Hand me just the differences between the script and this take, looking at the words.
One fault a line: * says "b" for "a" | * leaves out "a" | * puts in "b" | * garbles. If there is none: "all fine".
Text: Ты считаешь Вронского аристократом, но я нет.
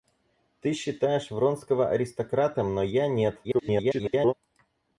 * garbles